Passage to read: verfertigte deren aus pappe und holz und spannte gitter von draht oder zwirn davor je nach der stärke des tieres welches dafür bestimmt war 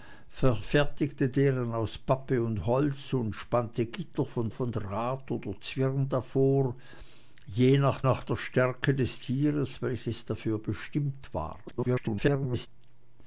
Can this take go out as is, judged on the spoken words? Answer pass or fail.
fail